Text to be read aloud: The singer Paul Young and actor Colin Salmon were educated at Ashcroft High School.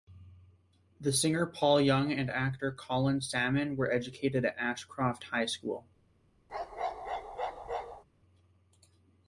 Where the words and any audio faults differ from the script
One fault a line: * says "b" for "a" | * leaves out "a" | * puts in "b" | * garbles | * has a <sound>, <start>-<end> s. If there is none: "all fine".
* has a bark, 6.5-8.0 s